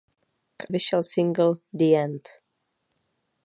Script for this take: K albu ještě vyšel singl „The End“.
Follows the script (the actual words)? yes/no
no